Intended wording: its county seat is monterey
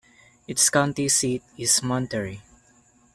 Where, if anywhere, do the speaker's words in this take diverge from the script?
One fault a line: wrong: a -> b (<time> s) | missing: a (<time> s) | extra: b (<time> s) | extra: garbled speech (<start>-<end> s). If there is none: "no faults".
no faults